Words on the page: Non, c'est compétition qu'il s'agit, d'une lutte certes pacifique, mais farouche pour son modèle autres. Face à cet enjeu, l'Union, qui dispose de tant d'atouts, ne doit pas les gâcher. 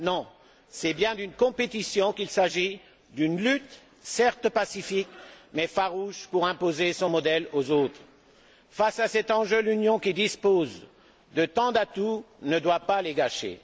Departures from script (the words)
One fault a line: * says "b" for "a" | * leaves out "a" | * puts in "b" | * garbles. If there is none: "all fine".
* puts in "bien d'une"
* puts in "imposer"
* puts in "aux"